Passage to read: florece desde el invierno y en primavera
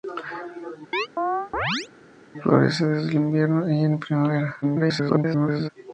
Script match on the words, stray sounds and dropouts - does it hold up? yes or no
no